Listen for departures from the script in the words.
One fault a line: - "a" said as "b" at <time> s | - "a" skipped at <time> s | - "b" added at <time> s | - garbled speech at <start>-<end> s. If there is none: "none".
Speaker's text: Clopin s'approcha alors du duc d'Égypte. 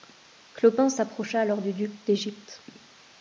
none